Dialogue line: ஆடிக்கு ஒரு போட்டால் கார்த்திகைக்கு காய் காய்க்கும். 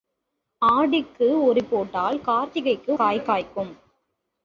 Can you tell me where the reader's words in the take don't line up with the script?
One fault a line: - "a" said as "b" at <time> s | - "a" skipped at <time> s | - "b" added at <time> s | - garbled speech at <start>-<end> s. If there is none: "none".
none